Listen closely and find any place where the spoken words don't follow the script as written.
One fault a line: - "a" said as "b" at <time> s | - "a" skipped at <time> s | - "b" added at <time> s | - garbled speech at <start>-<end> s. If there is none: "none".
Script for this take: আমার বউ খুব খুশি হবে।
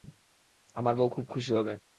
none